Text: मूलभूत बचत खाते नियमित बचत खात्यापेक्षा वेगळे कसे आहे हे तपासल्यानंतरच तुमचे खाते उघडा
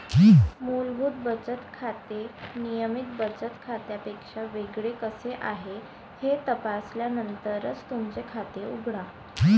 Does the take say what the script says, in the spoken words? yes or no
yes